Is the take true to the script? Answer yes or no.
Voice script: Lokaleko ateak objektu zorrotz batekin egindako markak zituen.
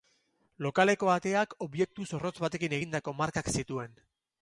yes